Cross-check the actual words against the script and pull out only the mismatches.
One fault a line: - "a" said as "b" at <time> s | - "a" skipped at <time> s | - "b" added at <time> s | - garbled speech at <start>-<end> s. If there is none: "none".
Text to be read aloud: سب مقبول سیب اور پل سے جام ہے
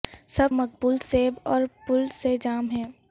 none